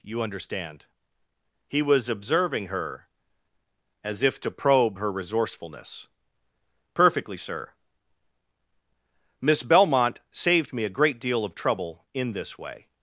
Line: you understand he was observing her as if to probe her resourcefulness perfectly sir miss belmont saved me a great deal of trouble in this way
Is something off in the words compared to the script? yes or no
no